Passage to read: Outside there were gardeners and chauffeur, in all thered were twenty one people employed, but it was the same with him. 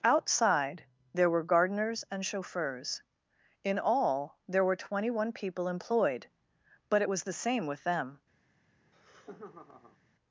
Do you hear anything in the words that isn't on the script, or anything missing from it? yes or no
yes